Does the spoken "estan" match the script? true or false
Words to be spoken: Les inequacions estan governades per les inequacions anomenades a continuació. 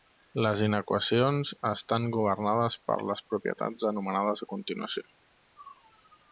true